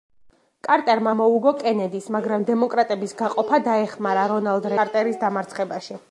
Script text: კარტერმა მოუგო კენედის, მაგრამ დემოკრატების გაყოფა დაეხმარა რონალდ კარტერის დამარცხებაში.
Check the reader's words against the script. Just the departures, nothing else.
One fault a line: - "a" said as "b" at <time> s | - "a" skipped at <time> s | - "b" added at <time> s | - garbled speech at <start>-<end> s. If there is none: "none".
none